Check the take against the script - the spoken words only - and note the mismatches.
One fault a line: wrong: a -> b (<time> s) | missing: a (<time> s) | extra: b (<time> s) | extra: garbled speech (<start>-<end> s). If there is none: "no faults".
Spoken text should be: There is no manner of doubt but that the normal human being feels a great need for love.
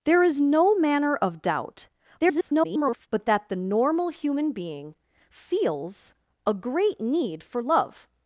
extra: garbled speech (2.2-3.1 s)